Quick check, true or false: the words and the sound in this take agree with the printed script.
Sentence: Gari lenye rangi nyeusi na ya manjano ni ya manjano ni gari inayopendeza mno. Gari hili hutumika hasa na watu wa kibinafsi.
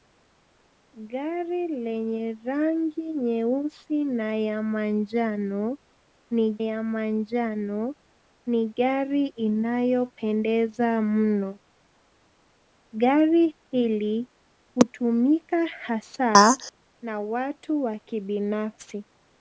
true